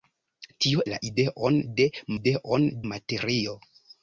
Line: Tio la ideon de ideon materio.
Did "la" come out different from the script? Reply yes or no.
no